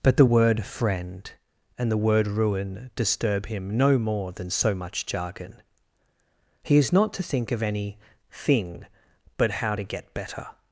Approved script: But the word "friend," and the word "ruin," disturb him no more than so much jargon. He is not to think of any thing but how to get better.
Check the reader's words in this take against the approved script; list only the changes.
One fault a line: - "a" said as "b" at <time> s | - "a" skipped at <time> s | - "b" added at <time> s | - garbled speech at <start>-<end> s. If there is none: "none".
none